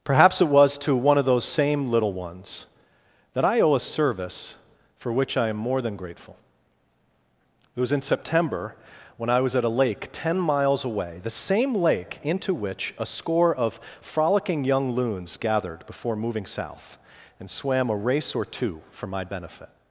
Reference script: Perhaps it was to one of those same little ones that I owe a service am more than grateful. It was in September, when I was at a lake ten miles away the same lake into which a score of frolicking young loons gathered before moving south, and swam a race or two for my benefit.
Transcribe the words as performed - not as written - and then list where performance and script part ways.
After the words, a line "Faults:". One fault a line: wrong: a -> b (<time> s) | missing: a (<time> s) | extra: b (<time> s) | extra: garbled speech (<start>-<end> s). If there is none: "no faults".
Perhaps it was to one of those same little ones that I owe a service for which I am more than grateful. It was in September, when I was at a lake ten miles away the same lake into which a score of frolicking young loons gathered before moving south, and swam a race or two for my benefit.
Faults:
extra: for which I (5.0 s)